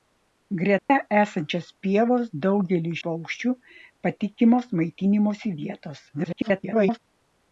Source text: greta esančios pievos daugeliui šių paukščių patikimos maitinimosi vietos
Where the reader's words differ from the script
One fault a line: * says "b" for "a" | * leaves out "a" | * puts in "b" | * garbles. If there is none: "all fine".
* leaves out "šių"
* garbles